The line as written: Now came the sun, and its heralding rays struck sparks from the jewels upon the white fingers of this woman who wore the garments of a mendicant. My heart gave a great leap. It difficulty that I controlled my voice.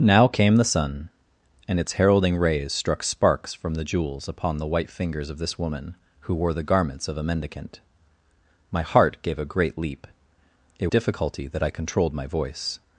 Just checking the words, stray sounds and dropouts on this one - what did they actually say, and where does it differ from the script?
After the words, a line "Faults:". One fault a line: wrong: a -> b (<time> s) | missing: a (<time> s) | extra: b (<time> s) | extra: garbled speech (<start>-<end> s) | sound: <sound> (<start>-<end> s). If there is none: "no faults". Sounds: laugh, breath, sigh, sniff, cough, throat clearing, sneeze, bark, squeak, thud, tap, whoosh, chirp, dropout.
Now came the sun, and its heralding rays struck sparks from the jewels upon the white fingers of this woman who wore the garments of a mendicant. My heart gave a great leap. It difficulty that I controlled my voice.
Faults:
no faults